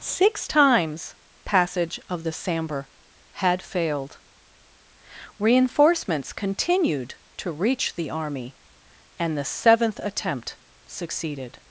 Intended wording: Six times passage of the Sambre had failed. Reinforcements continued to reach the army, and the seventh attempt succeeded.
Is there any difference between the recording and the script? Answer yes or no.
no